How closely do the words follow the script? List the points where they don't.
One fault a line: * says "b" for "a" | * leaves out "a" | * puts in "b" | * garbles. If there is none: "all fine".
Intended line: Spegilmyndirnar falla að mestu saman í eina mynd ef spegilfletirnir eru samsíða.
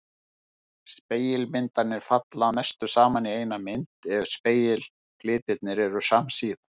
all fine